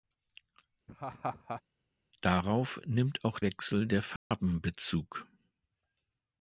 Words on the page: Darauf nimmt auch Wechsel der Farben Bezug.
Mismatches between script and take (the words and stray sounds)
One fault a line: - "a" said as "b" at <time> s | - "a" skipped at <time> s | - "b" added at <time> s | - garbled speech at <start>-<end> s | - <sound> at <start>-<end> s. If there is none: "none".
- laugh at 0.9-1.6 s
- dropout at 4.2-4.3 s